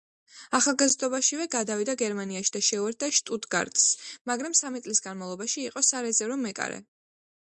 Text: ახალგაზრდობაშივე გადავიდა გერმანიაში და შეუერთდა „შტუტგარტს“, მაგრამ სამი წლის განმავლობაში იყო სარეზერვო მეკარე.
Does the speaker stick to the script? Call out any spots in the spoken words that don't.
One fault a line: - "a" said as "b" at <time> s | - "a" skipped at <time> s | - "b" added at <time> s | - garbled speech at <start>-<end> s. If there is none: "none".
none